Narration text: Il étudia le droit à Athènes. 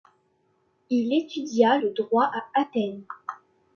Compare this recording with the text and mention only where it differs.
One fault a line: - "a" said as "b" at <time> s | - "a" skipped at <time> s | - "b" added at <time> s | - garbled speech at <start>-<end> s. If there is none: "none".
none